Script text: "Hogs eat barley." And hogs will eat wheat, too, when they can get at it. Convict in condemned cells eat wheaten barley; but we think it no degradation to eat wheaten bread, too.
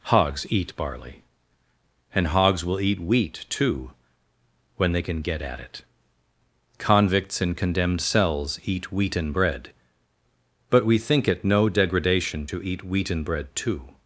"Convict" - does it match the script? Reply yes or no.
no